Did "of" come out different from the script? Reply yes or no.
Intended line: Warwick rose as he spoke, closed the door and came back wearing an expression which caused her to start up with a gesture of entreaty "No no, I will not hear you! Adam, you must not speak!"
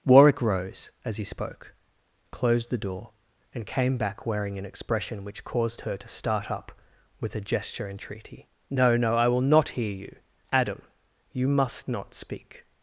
yes